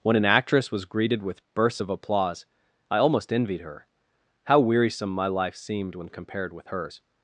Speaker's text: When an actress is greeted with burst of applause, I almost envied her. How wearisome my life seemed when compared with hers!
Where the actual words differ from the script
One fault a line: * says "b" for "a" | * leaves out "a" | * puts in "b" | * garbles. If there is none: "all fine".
* says "was" for "is"
* says "bursts" for "burst"